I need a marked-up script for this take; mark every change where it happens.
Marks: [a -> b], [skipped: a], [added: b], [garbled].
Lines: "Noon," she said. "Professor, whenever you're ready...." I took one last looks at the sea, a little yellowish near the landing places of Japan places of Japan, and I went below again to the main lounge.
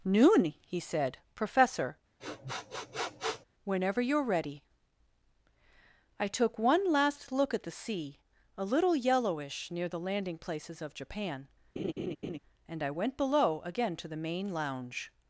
"Noon," [she -> he] said. "Professor, whenever you're ready...." I took one last [looks -> look] at the sea, a little yellowish near the landing places of Japan [skipped: places of Japan,] and I went below again to the main lounge.